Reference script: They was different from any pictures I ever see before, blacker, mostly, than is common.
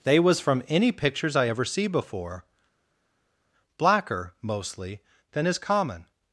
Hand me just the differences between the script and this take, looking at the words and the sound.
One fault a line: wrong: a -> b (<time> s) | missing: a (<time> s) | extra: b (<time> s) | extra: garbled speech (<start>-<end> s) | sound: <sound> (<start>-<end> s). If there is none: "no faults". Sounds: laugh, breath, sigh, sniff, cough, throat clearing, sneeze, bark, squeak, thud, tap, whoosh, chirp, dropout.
missing: different (0.4 s)